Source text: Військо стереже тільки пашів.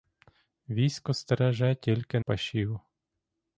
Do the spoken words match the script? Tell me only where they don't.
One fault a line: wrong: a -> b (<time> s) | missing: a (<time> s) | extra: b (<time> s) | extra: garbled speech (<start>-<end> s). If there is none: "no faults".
no faults